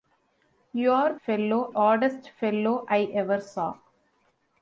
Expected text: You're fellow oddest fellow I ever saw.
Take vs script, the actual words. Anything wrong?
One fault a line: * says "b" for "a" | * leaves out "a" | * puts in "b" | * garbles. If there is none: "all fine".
all fine